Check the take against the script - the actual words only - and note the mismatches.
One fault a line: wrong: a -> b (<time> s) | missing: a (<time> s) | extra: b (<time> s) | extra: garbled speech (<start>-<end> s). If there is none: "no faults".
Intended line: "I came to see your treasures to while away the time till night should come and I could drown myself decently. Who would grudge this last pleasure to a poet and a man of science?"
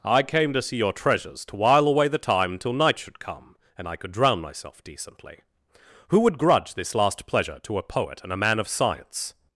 no faults